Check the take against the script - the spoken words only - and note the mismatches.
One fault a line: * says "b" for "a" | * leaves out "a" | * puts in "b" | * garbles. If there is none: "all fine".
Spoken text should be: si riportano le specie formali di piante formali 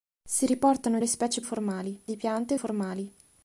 all fine